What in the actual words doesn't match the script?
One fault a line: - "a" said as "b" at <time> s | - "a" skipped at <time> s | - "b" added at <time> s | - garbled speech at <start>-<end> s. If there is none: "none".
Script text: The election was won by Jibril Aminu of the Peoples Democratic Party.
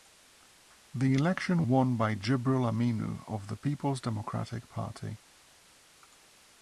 - "was" skipped at 1.7 s